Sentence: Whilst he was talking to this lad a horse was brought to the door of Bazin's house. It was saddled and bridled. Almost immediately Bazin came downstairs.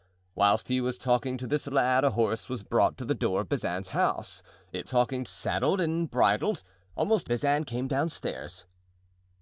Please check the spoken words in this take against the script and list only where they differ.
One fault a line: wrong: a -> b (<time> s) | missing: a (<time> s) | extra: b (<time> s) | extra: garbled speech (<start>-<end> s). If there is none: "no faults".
wrong: was -> talking (4.8 s)
missing: immediately (7.3 s)